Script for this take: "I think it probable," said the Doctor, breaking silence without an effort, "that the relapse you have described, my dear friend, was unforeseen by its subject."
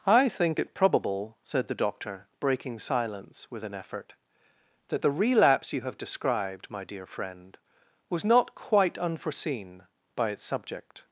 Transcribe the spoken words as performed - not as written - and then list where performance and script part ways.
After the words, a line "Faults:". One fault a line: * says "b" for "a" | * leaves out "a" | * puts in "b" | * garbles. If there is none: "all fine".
"I think it probable," said the Doctor, breaking silence with an effort, "that the relapse you have described, my dear friend, was not quite unforeseen by its subject."
Faults:
* says "with" for "without"
* puts in "not quite"